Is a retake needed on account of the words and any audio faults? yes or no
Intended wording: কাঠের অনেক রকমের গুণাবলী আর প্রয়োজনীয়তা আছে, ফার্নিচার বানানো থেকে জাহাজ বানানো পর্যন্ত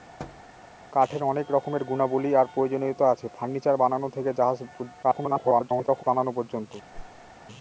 yes